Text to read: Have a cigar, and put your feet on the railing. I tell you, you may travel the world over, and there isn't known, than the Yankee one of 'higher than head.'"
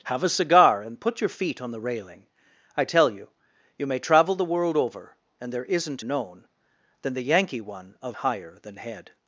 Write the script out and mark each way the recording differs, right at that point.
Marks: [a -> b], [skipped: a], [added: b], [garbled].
Have a cigar, and put your feet on the railing. I tell you, you may travel the world over, and there isn't known, than the Yankee one of 'higher than head.'"